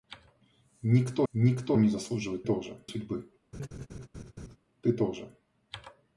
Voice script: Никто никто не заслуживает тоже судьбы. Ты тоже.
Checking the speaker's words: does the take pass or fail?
pass